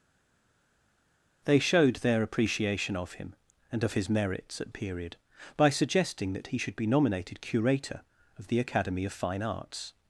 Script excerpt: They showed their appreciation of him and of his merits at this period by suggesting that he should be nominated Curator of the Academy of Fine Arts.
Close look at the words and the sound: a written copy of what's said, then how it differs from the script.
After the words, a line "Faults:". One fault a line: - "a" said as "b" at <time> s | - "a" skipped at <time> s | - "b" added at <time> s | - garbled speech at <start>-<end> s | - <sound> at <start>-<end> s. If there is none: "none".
They showed their appreciation of him and of his merits at period by suggesting that he should be nominated Curator of the Academy of Fine Arts.
Faults:
- "this" skipped at 4.7 s